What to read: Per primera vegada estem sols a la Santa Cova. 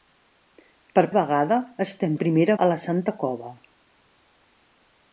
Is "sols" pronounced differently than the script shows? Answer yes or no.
yes